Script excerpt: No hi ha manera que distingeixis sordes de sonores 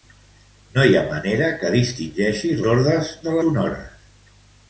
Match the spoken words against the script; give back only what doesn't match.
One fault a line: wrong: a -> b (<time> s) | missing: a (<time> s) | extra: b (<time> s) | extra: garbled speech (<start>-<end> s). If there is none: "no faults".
no faults